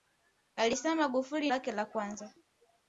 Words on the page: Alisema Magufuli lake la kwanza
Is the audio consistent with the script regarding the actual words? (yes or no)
yes